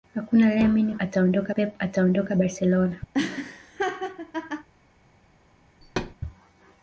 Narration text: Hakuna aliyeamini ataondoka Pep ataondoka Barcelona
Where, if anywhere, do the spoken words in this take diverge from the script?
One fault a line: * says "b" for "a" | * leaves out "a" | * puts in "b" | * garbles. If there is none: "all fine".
all fine